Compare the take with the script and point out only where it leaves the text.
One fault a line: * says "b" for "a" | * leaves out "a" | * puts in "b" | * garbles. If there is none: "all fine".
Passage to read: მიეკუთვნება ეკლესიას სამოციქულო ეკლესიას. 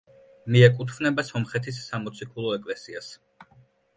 * says "სომხეთის" for "ეკლესიას"